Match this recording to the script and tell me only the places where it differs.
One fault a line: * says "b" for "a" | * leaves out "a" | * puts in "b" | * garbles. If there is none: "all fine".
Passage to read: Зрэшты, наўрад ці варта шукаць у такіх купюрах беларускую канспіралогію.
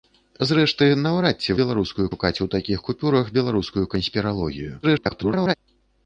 * says "беларускую" for "варта"
* garbles